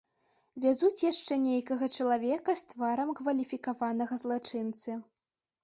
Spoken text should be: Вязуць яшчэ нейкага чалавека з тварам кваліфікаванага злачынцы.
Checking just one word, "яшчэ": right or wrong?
right